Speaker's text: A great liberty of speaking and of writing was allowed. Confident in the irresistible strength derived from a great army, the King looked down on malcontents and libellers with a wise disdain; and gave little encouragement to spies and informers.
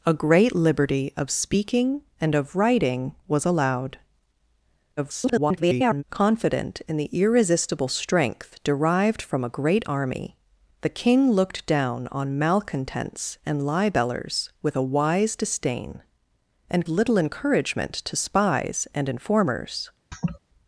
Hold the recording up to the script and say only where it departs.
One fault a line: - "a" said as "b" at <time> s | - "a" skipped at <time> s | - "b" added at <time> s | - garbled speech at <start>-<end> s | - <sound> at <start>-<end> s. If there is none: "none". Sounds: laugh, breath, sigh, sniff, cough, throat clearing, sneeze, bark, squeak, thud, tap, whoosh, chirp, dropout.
- garbled speech at 5.0-6.0 s
- "gave" skipped at 16.9 s
- laugh at 20.1-20.4 s